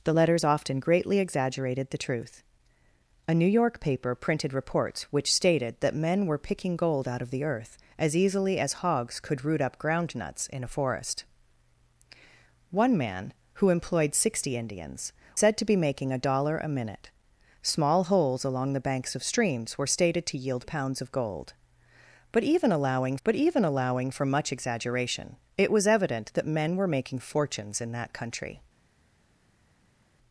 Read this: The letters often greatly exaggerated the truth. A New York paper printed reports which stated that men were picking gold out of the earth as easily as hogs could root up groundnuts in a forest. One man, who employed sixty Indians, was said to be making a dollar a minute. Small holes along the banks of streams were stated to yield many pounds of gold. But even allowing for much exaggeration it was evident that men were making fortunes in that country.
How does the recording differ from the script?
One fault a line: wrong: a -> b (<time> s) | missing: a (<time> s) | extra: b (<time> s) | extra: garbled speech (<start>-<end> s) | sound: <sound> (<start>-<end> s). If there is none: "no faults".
missing: was (15.1 s)
missing: many (20.7 s)
extra: but even allowing (23.2 s)